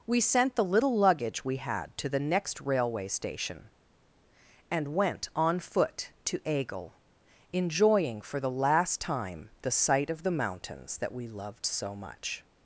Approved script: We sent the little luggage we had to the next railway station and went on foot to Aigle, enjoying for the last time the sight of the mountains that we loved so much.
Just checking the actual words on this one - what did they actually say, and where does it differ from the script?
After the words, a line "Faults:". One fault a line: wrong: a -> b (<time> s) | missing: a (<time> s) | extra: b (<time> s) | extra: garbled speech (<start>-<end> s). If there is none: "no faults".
We sent the little luggage we had to the next railway station and went on foot to Aigle, enjoying for the last time the sight of the mountains that we loved so much.
Faults:
no faults